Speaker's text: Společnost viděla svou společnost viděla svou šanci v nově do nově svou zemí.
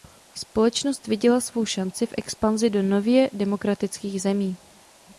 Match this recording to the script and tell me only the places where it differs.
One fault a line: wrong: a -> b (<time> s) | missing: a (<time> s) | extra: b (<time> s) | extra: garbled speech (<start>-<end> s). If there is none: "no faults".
missing: společnost viděla svou (1.6 s)
wrong: nově -> expanzi (2.2 s)
wrong: svou -> demokratických (3.3 s)